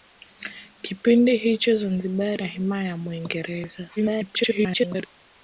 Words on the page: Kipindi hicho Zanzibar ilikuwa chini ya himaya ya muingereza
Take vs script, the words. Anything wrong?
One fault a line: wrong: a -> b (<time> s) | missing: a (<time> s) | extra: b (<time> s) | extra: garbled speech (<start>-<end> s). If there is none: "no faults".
missing: ilikuwa chini (2.4 s)
extra: garbled speech (4.0-5.1 s)